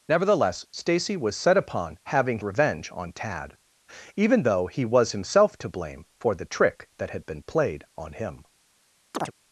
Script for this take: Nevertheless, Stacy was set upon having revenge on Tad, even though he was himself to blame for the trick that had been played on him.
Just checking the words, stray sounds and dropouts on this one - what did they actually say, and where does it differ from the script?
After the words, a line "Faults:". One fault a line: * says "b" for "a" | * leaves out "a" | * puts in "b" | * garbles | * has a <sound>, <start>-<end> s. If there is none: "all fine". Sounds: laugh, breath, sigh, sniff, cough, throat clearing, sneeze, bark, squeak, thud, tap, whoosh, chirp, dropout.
Nevertheless, Stacy was set upon having revenge on Tad, even though he was himself to blame for the trick that had been played on him.
Faults:
* has a chirp, 9.1-9.3 s